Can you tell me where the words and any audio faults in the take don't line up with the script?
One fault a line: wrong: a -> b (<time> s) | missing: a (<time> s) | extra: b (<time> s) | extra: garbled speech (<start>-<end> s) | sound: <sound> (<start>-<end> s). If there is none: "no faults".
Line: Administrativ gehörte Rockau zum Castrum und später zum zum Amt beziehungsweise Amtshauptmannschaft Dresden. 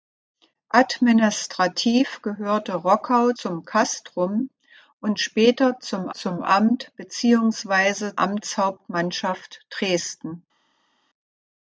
no faults